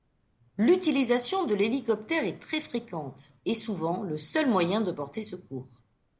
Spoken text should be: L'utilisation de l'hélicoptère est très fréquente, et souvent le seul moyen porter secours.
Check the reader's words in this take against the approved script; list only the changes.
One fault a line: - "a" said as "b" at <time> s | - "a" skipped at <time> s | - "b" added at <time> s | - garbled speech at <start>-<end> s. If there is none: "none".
- "de" added at 4.8 s